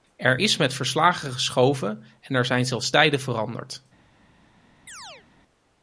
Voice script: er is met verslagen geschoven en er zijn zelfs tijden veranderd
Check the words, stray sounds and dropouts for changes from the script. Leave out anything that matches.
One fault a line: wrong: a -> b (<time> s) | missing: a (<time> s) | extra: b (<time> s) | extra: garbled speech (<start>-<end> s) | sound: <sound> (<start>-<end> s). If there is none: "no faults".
sound: chirp (4.9-5.3 s)